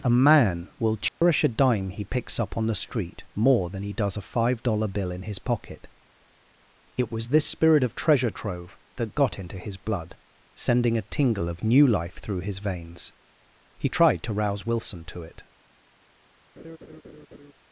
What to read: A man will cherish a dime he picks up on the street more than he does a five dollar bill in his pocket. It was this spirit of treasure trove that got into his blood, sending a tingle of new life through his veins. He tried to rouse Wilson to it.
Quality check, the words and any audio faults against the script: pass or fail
fail